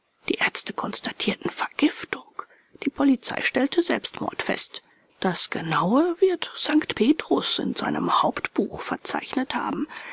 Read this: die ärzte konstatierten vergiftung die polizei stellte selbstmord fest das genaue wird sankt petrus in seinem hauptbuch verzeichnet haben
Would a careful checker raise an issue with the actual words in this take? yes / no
no